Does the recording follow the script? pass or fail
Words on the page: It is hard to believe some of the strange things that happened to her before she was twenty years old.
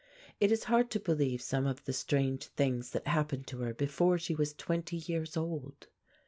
pass